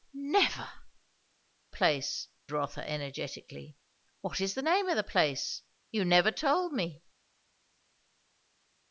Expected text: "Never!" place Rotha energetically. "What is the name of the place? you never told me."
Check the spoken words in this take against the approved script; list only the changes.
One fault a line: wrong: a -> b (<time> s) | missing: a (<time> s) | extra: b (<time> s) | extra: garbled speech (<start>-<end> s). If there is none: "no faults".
no faults